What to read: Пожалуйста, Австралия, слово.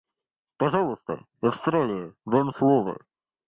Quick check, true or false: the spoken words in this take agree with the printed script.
false